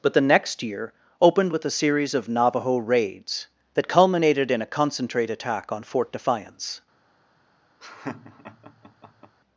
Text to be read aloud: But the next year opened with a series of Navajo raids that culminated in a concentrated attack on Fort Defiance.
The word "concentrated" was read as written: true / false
false